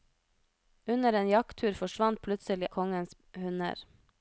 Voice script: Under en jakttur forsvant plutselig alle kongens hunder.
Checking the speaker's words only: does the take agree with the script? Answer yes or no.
no